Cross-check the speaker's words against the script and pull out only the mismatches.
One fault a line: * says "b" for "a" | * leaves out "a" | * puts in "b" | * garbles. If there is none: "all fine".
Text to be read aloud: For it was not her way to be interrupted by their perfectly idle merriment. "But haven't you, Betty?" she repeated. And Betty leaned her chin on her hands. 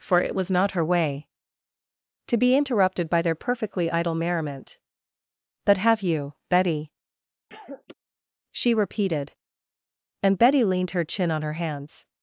* says "have" for "haven't"